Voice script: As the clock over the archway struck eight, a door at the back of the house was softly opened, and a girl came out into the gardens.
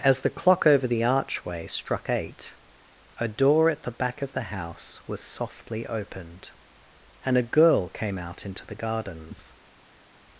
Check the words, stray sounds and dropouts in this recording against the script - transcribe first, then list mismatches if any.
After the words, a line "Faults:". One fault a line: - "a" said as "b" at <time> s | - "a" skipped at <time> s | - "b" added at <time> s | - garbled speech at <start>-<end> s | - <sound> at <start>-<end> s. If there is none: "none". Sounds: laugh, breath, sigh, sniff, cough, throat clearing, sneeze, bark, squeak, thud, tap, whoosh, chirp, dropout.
As the clock over the archway struck eight, a door at the back of the house was softly opened, and a girl came out into the gardens.
Faults:
none